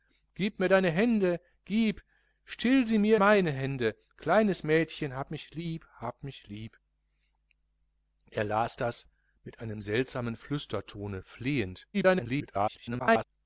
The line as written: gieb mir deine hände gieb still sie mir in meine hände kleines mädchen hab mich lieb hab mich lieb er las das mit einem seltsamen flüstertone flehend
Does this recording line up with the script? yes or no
no